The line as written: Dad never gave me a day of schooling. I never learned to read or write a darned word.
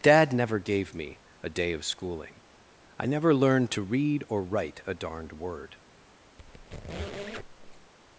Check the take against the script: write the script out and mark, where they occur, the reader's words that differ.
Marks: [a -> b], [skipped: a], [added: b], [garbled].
Dad never gave me a day of schooling. I never learned to read or write a darned word.